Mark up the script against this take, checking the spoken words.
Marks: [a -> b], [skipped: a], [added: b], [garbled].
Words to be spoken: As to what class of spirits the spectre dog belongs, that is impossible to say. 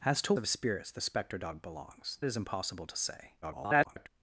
As to [skipped: what class] of spirits the spectre dog belongs, [skipped: that] is impossible to say. [garbled]